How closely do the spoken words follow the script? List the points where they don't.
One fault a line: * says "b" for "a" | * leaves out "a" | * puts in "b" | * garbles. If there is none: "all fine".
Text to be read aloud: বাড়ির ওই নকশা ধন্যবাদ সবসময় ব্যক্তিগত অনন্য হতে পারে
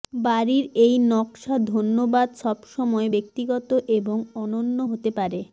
* says "এই" for "ওই"
* puts in "এবং"